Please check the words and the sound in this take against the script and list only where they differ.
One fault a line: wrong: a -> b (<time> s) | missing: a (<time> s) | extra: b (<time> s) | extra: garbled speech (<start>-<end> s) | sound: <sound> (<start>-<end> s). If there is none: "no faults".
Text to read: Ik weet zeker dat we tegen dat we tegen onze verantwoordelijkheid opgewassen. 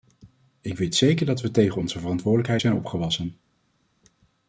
missing: dat we tegen (1.8 s)
extra: zijn (2.6 s)